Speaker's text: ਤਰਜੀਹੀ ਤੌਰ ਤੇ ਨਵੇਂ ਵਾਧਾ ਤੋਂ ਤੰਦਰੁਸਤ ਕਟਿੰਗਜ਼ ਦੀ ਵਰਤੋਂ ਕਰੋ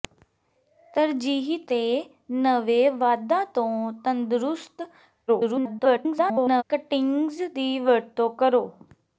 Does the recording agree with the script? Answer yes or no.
no